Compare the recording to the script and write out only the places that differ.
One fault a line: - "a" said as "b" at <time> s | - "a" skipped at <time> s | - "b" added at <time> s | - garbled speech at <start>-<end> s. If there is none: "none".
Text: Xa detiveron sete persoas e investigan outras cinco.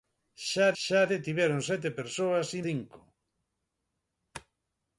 - "xa" added at 0.8 s
- "investigan outras" skipped at 2.6 s